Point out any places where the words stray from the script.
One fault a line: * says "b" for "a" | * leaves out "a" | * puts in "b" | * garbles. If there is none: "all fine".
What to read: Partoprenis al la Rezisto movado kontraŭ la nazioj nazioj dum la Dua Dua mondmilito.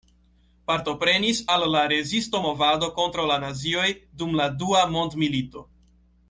* leaves out "nazioj"
* leaves out "Dua"